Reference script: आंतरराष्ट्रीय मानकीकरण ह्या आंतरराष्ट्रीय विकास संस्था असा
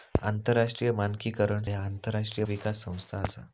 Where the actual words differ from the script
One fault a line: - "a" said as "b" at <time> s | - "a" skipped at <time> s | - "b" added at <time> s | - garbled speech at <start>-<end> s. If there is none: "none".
none